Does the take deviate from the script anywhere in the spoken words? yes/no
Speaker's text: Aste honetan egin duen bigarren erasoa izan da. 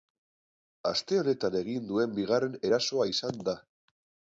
no